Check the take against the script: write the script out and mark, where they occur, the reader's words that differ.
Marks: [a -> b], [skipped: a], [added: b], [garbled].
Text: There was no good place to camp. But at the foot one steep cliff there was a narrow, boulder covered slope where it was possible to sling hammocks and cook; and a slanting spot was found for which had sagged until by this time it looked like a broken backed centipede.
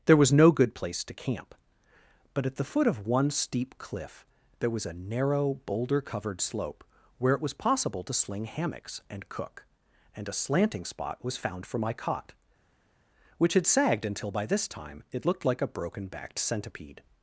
There was no good place to camp. But at the foot [added: of] one steep cliff there was a narrow, boulder covered slope where it was possible to sling hammocks and cook; and a slanting spot was found for [added: my cot] which had sagged until by this time it looked like a broken backed centipede.